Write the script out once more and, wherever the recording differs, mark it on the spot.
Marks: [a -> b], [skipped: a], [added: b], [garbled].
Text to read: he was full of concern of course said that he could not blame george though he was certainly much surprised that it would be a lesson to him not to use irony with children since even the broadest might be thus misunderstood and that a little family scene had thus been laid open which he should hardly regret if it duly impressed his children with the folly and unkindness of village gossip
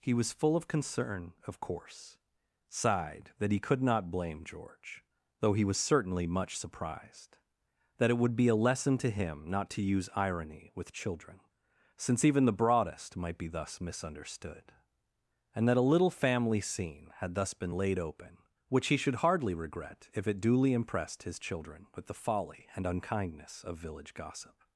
he was full of concern of course [said -> sighed] that he could not blame george though he was certainly much surprised that it would be a lesson to him not to use irony with children since even the broadest might be thus misunderstood and that a little family scene had thus been laid open which he should hardly regret if it duly impressed his children with the folly and unkindness of village gossip